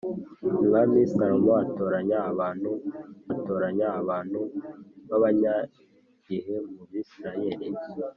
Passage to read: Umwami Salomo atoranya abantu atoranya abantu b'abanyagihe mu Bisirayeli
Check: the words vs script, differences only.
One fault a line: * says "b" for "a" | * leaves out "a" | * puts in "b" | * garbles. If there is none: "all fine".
all fine